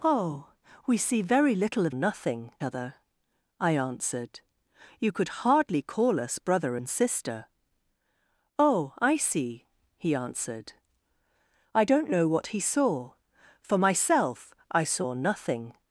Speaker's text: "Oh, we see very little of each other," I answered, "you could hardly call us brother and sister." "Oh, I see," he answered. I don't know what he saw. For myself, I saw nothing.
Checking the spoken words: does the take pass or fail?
fail